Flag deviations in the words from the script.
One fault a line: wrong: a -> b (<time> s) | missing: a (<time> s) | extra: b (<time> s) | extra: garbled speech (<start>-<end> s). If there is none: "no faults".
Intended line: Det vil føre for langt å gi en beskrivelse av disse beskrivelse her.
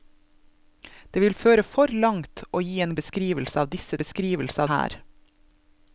no faults